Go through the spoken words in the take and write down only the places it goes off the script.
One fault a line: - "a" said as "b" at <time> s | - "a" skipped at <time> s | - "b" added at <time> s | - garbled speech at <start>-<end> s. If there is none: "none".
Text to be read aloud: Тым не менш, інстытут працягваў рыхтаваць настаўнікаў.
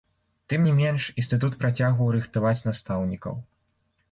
none